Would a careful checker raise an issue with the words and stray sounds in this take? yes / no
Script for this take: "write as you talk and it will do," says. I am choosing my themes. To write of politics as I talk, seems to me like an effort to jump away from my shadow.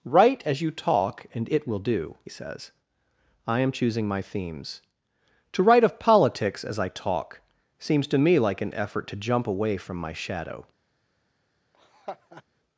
yes